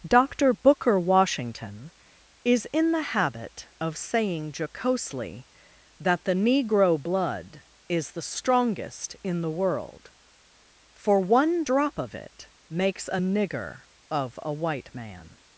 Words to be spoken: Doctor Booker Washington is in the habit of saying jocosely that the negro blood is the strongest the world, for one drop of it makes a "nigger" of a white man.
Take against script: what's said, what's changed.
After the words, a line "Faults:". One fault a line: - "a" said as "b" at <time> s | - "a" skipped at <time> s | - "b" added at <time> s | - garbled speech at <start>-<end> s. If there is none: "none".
Doctor Booker Washington is in the habit of saying jocosely that the negro blood is the strongest in the world, for one drop of it makes a "nigger" of a white man.
Faults:
- "in" added at 9.2 s